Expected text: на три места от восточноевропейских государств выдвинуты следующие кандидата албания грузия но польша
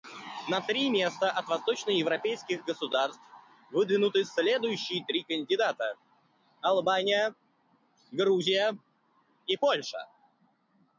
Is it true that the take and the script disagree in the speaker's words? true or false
true